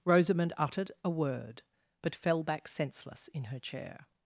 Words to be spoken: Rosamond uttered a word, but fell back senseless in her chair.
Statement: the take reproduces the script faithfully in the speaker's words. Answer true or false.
true